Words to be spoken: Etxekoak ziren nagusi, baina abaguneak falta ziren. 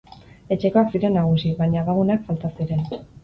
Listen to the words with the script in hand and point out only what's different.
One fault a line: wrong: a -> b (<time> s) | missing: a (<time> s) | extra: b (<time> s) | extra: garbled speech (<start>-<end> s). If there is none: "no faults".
no faults